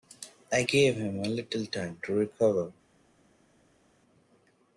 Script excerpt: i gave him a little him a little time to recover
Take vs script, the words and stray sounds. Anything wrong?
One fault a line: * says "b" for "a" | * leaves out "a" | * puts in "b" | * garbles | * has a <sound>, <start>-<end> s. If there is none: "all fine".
* leaves out "him a little"